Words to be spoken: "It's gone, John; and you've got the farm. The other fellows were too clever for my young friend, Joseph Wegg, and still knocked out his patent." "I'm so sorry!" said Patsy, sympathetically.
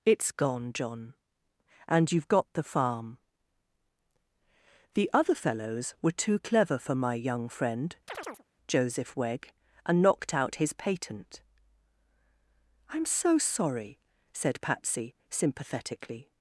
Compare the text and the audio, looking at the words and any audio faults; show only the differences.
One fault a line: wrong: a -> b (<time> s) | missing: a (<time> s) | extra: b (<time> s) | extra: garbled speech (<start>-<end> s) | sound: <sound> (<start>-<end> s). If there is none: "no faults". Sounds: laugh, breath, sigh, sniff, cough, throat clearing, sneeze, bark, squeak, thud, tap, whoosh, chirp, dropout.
sound: chirp (8.1-8.4 s)
missing: still (10.0 s)